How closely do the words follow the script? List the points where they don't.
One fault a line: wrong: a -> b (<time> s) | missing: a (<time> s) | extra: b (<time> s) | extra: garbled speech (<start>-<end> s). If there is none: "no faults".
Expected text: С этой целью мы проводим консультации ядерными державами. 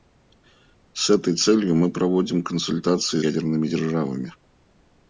no faults